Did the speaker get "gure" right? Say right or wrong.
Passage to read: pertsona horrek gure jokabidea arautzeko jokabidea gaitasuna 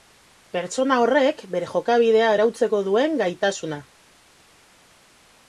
wrong